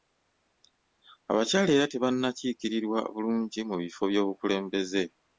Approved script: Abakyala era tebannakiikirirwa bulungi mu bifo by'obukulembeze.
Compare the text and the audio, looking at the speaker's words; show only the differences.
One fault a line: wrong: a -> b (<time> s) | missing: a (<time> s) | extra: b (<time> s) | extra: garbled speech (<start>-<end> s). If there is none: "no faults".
no faults